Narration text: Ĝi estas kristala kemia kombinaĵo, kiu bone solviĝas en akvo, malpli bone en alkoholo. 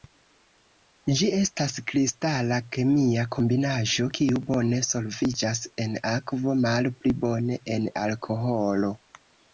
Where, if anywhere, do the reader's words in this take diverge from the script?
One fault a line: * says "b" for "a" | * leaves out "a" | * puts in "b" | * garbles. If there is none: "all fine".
all fine